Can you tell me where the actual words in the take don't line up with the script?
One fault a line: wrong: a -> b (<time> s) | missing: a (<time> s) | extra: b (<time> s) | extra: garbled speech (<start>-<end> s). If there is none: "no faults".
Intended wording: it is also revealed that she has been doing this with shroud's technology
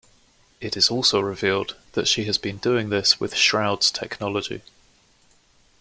no faults